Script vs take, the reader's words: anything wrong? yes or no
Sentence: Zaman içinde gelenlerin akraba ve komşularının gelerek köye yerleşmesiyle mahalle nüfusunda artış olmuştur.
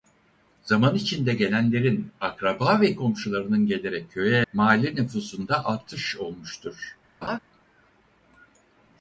yes